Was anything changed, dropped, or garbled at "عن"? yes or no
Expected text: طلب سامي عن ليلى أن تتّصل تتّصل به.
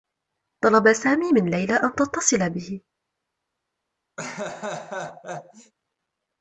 yes